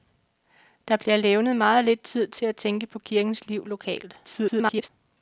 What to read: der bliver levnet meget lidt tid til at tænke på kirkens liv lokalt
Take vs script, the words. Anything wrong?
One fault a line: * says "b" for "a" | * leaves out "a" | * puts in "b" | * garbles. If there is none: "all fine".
* garbles